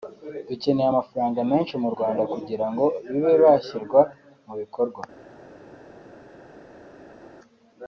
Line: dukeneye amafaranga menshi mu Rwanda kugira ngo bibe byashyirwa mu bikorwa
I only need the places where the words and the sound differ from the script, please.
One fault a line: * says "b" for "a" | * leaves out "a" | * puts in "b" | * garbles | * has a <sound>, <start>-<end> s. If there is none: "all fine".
all fine